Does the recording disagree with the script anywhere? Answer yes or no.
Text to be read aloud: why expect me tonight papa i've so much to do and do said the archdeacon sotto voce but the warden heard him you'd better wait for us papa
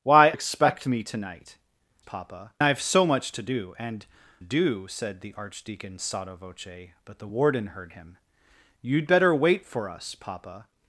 no